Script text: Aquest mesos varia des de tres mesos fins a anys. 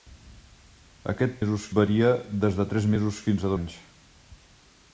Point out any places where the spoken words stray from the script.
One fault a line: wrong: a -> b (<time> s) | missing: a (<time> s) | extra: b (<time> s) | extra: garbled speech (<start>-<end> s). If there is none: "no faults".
no faults